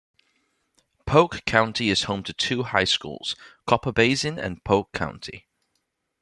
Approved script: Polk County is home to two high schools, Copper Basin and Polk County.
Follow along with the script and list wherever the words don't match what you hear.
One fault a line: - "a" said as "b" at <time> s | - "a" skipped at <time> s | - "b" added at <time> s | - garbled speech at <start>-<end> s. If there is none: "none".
none